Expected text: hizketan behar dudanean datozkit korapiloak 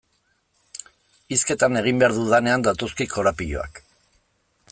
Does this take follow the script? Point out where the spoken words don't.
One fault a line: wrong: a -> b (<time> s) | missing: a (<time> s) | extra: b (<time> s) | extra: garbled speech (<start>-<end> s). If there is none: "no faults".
extra: egin (1.8 s)